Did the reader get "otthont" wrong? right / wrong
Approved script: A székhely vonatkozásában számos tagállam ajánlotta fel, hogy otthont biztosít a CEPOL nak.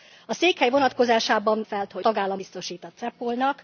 wrong